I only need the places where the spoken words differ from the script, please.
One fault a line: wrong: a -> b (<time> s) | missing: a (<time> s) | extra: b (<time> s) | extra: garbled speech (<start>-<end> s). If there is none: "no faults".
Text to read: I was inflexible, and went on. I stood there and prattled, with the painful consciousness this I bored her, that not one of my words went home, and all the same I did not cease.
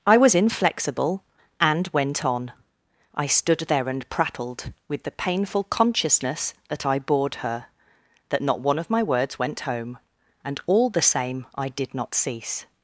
wrong: this -> that (6.7 s)